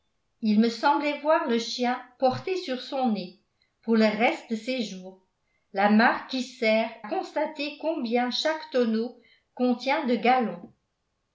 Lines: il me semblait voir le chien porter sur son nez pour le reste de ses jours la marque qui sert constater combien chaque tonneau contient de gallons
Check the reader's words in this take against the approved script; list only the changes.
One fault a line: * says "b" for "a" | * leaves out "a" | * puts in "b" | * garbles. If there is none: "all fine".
all fine